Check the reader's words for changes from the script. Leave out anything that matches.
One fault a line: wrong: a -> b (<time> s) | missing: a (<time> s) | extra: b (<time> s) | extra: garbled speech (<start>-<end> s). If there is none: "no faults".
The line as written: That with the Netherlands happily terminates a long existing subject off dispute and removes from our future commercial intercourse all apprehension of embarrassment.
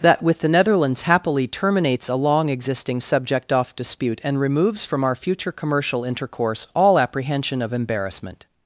no faults